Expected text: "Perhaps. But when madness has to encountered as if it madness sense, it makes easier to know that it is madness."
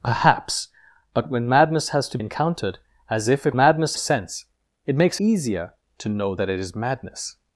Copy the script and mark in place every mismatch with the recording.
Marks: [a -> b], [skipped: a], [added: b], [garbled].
"Perhaps. But when madness has to encountered as if it madness sense, it makes easier to know that it is madness."